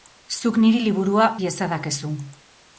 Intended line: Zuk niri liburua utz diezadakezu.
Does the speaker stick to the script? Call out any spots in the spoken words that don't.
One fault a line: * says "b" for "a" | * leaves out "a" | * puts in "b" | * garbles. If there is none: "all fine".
* leaves out "utz"